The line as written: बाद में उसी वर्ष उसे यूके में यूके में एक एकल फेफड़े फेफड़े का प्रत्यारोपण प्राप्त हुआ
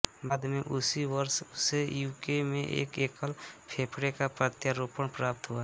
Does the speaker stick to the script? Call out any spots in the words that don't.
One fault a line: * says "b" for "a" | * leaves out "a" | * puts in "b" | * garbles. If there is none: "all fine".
* leaves out "यूके में"
* leaves out "फेफड़े"